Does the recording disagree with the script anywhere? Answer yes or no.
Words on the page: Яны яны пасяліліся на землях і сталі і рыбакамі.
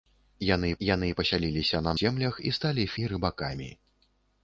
no